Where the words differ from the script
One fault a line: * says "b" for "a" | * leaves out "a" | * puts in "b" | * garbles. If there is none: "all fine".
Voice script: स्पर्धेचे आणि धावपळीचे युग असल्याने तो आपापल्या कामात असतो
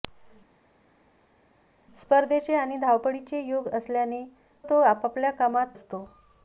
all fine